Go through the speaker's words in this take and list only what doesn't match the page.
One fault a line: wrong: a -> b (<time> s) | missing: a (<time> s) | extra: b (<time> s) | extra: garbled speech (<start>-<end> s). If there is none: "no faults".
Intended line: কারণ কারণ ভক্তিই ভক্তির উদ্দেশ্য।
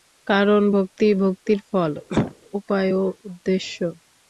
missing: কারণ (0.6 s)
extra: ফল উপায় ও (1.7 s)